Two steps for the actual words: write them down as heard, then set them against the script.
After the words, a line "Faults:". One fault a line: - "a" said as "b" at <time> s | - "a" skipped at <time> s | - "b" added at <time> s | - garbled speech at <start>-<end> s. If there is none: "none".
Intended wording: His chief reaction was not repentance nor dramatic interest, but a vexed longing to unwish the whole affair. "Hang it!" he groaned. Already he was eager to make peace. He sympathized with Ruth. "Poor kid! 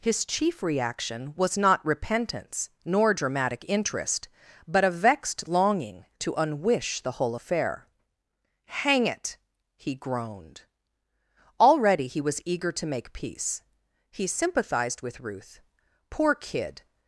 His chief reaction was not repentance nor dramatic interest, but a vexed longing to unwish the whole affair. "Hang it!" he groaned. Already he was eager to make peace. He sympathized with Ruth. "Poor kid!
Faults:
none